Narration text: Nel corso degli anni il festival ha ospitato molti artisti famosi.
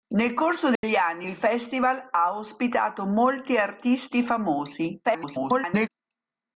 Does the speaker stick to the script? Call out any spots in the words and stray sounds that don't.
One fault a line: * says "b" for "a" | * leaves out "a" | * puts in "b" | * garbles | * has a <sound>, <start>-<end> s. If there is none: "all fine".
* has a dropout, 0.8-0.8 s
* garbles